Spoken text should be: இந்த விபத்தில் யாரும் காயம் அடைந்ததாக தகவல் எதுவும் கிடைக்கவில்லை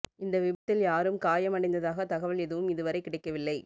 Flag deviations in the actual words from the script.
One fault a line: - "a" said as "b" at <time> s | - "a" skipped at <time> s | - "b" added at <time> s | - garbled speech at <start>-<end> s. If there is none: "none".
- "இதுவரை" added at 2.7 s